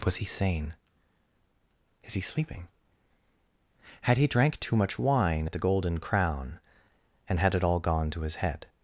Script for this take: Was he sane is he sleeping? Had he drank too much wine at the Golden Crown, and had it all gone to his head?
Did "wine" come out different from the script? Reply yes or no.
no